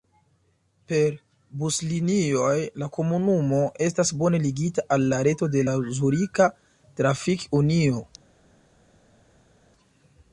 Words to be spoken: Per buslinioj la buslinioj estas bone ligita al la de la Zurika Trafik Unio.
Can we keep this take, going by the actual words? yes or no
no